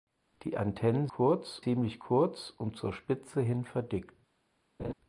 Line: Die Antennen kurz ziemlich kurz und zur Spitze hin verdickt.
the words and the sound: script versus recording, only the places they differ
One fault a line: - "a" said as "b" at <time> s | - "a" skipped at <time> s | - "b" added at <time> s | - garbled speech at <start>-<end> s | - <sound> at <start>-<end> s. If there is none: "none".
- laugh at 4.8-4.9 s